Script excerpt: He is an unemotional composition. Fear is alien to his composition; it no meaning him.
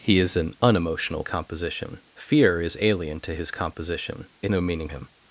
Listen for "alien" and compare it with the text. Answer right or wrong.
right